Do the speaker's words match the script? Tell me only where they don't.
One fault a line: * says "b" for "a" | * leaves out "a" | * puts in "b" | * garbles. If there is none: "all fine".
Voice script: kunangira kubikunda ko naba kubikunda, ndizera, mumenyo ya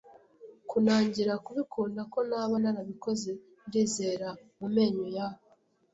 * says "narabikoze" for "kubikunda"